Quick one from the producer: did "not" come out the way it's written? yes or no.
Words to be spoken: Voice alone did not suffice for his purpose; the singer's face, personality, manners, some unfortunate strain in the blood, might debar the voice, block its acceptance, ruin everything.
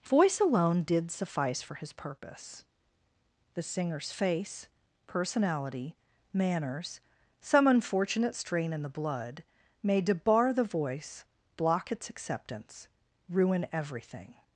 no